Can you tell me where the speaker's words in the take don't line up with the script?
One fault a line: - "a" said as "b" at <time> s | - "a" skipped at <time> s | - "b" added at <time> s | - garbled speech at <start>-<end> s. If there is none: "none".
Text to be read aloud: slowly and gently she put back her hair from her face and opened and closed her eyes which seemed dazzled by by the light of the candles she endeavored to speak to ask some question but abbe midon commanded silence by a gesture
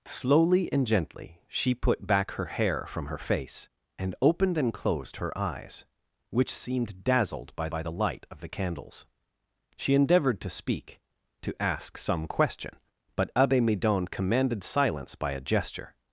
none